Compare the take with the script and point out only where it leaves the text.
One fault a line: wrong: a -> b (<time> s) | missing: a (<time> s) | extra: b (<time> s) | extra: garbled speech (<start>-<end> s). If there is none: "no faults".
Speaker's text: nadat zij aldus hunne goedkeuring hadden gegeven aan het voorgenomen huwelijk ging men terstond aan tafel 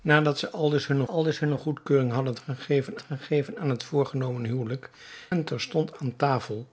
extra: aldus hunne (1.0 s)
extra: gegeven (3.0 s)
missing: ging (4.9 s)